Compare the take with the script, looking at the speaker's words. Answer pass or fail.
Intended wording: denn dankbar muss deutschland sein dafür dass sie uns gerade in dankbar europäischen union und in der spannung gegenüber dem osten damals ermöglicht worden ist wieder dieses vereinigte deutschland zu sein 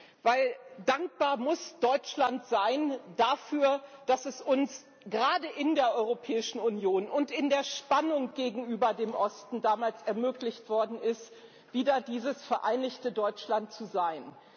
fail